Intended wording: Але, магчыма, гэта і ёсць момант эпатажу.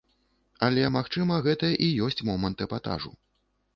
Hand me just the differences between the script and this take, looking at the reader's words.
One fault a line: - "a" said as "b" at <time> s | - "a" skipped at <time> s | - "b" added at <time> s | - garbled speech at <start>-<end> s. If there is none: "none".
none